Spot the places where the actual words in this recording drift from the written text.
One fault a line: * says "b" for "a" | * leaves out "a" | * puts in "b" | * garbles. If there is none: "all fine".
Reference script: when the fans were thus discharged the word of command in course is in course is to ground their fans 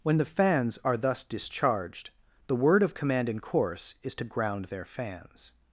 * says "are" for "were"
* leaves out "in course is"